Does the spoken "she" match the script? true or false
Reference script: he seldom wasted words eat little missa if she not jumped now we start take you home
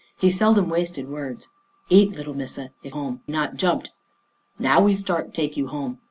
false